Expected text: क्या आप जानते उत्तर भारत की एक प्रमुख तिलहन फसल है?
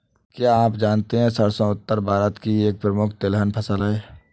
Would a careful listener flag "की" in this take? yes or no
no